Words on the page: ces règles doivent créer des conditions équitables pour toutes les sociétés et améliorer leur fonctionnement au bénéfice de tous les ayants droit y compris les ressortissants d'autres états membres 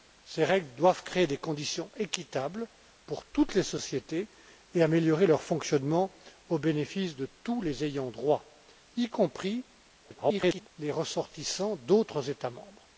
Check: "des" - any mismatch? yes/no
no